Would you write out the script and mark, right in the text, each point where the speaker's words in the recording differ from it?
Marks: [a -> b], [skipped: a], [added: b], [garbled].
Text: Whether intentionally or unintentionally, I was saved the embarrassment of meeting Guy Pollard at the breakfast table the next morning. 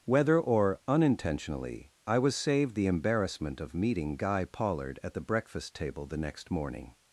Whether [skipped: intentionally] or unintentionally, I was saved the embarrassment of meeting Guy Pollard at the breakfast table the next morning.